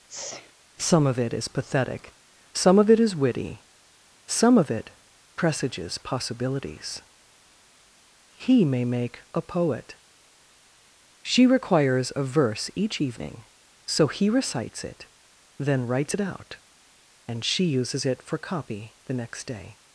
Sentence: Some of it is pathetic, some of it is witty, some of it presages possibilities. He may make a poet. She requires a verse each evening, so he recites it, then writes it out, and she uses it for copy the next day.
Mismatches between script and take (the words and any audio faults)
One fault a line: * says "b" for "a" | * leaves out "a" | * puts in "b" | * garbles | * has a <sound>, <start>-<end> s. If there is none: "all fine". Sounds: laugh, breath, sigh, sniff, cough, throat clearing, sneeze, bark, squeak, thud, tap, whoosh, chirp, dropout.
* has a sneeze, 0.1-0.5 s